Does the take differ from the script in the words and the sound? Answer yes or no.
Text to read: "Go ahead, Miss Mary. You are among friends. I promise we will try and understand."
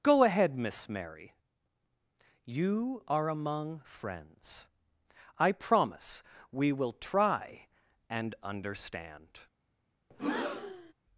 yes